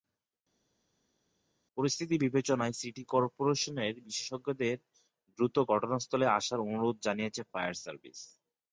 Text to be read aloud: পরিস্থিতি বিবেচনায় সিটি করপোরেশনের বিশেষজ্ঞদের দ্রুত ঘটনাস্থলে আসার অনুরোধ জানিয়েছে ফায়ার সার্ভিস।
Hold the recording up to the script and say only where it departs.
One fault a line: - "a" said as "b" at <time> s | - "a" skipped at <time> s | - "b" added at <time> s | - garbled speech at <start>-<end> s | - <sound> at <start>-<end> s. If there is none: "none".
none